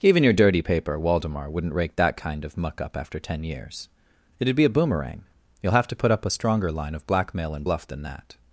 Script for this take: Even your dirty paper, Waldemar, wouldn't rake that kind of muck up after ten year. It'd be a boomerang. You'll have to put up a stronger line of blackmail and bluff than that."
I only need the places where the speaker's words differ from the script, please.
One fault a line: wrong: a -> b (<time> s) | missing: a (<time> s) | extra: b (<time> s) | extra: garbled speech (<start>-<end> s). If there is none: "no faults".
wrong: year -> years (3.4 s)